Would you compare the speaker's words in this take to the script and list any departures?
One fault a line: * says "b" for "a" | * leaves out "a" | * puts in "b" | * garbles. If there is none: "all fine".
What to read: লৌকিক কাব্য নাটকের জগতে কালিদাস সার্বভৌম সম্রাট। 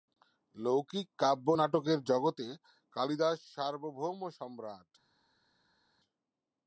all fine